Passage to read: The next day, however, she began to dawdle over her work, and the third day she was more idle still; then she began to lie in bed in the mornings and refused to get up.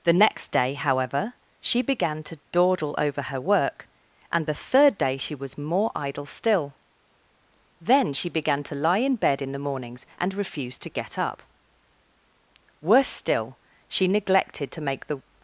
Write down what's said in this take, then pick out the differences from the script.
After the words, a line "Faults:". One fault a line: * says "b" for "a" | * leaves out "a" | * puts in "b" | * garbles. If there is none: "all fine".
The next day, however, she began to dawdle over her work, and the third day she was more idle still; then she began to lie in bed in the mornings and refused to get up. Worse still, she neglected to make the
Faults:
* puts in "Worse still she neglected to make the"